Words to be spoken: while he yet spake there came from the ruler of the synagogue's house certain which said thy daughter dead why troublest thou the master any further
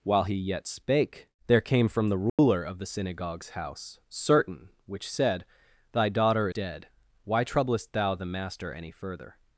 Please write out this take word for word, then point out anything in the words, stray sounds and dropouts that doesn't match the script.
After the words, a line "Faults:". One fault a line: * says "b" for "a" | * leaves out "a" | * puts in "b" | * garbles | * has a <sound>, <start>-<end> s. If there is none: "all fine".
while he yet spake there came from the ruler of the synagogue's house certain which said thy daughter dead why troublest thou the master any further
Faults:
* has a dropout, 2.3-2.4 s